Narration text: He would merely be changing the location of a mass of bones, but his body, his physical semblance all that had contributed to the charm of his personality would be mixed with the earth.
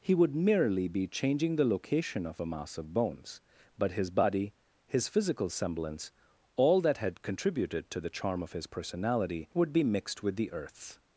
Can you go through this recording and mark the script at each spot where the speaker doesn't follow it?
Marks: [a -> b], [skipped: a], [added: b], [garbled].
He would merely be changing the location of a mass of bones, but his body, his physical semblance all that had contributed to the charm of his personality would be mixed with the earth.